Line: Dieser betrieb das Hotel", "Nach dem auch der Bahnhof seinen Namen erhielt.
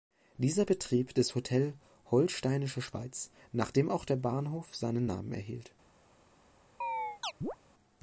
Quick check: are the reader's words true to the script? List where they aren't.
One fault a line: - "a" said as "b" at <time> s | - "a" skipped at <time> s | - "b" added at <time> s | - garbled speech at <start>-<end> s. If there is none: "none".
- "Holsteinische Schweiz" added at 2.1 s